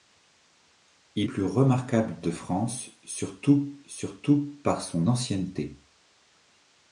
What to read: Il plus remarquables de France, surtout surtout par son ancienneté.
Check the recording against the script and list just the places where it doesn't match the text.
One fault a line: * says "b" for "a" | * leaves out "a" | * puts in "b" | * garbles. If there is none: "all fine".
all fine